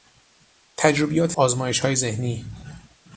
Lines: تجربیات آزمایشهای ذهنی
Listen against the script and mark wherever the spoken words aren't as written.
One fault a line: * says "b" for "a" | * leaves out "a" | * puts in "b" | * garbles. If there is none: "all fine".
all fine